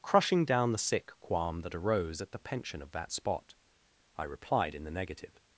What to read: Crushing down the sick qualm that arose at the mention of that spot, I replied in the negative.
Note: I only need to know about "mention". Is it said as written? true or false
false